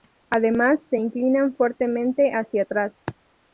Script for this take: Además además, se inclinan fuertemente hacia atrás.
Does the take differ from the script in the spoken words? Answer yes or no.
yes